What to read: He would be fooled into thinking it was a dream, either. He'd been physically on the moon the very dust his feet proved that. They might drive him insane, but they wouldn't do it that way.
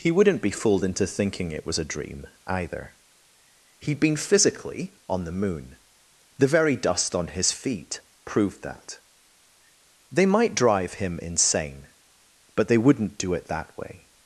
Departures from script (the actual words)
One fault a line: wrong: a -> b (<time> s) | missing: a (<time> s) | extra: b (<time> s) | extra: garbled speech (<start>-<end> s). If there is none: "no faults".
wrong: would -> wouldn't (0.1 s)
extra: on (7.1 s)